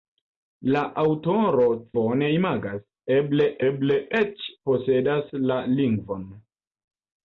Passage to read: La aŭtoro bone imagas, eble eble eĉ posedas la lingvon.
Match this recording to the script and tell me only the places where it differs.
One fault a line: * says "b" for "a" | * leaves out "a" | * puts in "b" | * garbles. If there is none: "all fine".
all fine